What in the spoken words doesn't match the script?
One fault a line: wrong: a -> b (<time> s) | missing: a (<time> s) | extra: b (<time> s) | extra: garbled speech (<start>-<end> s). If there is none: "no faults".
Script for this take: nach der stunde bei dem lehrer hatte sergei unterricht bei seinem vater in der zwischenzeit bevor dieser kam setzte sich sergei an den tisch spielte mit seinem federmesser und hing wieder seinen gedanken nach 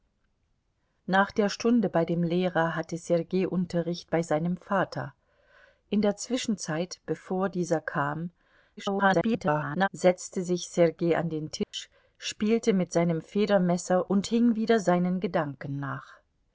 extra: garbled speech (8.8-9.9 s)